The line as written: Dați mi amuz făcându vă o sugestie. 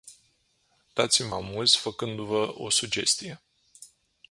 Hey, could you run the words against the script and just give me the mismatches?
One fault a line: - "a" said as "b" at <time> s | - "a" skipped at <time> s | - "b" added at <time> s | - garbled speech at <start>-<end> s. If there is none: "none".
none